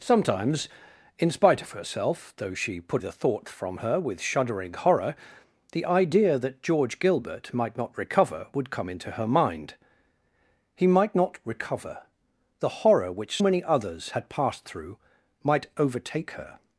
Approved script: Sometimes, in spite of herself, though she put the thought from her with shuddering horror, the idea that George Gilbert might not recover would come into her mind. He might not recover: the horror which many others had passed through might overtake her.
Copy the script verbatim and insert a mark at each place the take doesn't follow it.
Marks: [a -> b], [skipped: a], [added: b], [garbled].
Sometimes, in spite of herself, though she put the thought from her with shuddering horror, the idea that George Gilbert might not recover would come into her mind. He might not recover: the horror which many others had passed through might overtake her.